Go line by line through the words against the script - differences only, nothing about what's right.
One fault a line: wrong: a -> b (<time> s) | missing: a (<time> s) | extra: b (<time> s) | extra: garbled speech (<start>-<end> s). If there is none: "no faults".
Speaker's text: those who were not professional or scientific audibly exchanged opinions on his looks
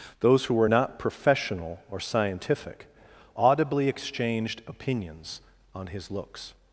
no faults